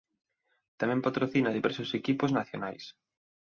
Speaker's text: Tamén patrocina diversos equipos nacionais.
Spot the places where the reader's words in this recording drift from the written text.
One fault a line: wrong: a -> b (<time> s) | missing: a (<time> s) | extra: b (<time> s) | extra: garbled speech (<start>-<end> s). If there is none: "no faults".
no faults